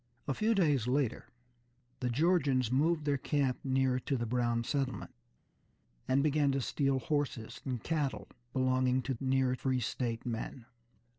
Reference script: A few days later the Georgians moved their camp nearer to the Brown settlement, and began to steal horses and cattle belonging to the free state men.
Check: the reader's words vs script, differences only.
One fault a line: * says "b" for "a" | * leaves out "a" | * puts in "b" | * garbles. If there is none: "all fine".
* says "nearer" for "the"